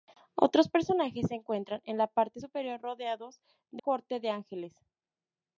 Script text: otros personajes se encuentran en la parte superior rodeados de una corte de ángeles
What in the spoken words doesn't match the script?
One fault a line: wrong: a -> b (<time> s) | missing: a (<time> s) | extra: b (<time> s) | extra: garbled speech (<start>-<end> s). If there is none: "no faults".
missing: una (3.8 s)